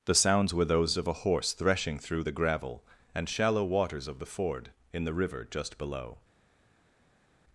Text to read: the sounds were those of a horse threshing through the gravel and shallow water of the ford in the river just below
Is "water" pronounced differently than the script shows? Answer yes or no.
yes